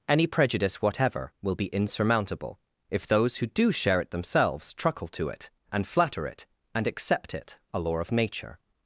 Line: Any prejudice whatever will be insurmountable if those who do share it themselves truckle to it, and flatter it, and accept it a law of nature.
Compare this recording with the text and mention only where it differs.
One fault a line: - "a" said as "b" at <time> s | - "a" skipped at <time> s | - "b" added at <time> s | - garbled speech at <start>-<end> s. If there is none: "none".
none